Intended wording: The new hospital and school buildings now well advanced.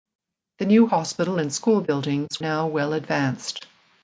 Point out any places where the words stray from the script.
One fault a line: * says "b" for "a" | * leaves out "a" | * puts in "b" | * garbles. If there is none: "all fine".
all fine